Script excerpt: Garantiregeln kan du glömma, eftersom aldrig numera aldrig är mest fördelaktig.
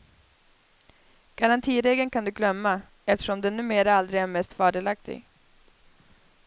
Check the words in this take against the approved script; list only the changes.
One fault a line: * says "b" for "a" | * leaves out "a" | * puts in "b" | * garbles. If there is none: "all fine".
* says "den" for "aldrig"